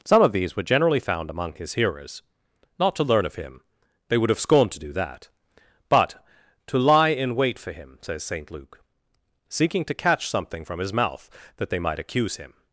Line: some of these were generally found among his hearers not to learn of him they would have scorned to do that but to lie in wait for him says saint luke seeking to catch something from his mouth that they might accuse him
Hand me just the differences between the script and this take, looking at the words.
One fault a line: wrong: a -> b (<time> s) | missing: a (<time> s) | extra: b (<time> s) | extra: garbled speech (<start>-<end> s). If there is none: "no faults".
no faults